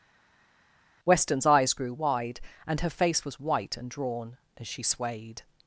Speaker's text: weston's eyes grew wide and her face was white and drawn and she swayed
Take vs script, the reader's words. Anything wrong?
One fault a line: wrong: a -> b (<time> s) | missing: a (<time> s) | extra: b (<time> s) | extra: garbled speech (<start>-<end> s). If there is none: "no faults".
wrong: and -> as (4.6 s)